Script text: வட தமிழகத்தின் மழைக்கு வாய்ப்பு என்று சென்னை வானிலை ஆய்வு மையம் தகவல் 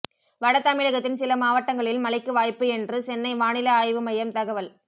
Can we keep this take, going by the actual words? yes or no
no